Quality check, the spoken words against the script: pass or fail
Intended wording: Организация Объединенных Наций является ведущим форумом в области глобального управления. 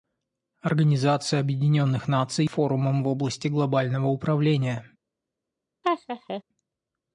fail